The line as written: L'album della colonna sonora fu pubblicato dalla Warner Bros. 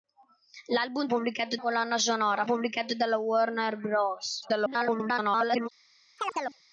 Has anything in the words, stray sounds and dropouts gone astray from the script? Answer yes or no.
yes